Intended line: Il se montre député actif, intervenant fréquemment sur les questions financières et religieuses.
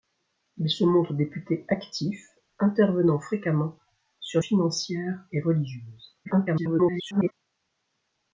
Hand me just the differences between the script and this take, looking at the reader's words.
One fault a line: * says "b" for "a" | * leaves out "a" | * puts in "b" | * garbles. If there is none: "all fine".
* leaves out "les questions"
* garbles